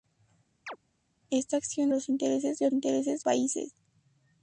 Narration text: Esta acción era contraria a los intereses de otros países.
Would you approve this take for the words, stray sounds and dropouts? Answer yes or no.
no